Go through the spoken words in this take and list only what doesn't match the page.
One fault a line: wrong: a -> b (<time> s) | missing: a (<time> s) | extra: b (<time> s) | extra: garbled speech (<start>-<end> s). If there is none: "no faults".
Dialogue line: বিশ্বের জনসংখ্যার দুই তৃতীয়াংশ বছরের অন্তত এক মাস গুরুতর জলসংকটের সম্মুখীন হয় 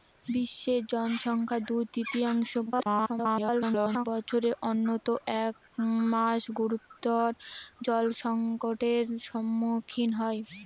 extra: garbled speech (2.7-4.1 s)